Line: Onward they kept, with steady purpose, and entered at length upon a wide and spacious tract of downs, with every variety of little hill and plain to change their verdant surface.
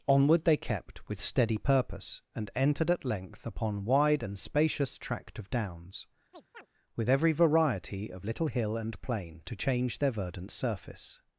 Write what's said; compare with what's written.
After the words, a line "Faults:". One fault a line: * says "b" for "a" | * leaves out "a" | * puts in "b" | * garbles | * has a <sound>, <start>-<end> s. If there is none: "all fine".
Onward they kept, with steady purpose, and entered at length upon wide and spacious tract of downs, with every variety of little hill and plain to change their verdant surface.
Faults:
* leaves out "a"
* has a chirp, 6.3-6.7 s